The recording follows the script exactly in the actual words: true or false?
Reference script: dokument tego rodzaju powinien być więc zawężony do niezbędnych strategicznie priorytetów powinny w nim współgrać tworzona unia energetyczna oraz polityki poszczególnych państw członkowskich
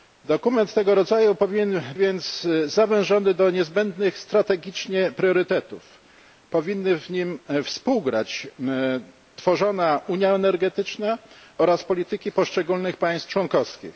false